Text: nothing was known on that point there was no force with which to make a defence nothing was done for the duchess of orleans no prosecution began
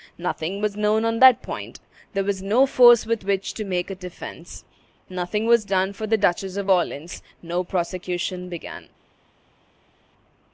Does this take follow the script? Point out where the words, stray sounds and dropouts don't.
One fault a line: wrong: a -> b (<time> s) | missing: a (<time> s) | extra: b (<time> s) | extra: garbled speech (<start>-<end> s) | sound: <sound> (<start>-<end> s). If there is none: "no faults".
no faults